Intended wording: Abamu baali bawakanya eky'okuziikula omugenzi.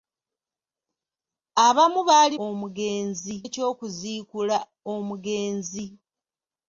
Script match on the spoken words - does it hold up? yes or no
no